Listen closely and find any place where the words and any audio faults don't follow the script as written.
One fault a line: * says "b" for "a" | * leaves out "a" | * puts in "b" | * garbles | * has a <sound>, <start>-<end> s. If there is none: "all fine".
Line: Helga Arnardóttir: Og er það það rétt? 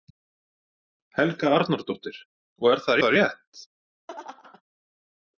* has a laugh, 4.1-4.6 s